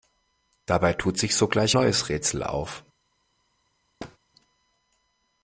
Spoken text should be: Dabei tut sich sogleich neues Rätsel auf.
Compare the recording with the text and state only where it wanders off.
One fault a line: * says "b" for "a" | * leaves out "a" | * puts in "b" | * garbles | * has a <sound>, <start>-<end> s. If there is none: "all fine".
* has a thud, 4.0-4.2 s